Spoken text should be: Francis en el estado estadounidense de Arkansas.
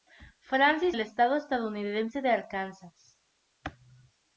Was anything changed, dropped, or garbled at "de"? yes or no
no